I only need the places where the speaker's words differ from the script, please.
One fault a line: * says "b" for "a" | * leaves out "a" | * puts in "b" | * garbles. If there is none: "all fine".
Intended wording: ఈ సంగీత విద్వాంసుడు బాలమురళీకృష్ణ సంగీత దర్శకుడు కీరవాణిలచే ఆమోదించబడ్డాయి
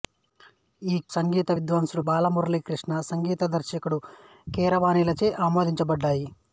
all fine